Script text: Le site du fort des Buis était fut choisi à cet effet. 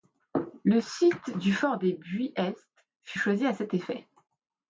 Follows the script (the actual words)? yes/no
no